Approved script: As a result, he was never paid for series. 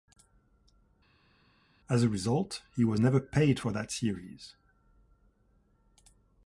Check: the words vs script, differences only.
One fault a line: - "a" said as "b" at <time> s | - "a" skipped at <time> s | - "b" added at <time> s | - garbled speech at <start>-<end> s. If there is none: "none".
- "that" added at 3.7 s